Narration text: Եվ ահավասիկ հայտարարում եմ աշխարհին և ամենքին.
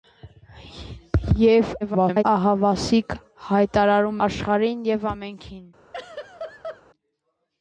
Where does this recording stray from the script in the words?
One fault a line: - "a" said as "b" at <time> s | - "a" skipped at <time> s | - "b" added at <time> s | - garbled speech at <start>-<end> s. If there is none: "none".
- garbled speech at 1.8-2.2 s
- "եմ" skipped at 4.2 s